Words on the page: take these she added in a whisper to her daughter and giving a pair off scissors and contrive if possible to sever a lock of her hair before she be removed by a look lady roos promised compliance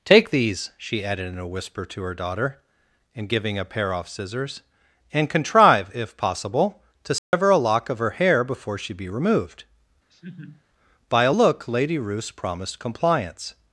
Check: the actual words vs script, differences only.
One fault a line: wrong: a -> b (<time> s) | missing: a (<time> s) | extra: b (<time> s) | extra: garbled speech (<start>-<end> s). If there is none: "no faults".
no faults